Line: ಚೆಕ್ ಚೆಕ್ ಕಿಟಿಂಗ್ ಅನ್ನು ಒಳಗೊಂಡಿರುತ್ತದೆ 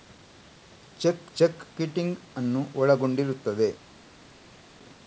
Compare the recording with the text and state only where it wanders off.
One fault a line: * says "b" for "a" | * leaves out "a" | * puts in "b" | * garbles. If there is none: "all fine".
all fine